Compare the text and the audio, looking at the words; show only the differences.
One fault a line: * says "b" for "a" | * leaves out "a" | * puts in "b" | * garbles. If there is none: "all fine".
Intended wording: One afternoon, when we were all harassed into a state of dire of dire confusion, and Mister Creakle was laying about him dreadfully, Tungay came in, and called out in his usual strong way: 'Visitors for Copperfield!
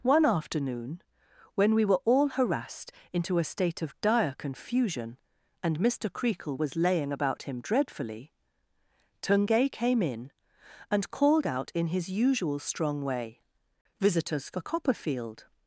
* leaves out "of dire"